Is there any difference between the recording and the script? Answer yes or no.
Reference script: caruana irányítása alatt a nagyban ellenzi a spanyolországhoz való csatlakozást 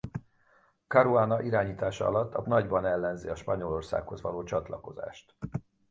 no